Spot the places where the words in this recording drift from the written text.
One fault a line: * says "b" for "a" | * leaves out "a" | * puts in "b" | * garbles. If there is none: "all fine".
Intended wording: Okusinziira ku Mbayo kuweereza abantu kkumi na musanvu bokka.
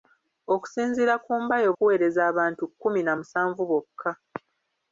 all fine